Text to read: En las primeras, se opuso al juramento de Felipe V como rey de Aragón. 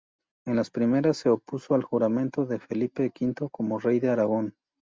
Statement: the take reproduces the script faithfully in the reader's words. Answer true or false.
true